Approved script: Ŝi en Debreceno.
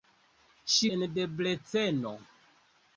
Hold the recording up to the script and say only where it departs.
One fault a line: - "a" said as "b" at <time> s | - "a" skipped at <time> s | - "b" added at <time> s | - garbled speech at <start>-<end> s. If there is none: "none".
none